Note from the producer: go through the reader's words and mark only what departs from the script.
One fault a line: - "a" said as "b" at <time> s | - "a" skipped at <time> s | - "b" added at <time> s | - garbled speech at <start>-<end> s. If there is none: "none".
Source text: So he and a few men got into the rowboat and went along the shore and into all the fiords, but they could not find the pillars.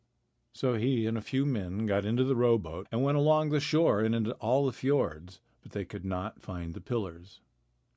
none